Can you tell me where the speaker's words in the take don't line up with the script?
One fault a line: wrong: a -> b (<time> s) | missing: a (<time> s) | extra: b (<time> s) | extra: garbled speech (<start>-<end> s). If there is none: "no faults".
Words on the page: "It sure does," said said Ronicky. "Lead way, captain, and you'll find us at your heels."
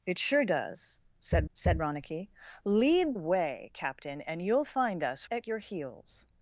no faults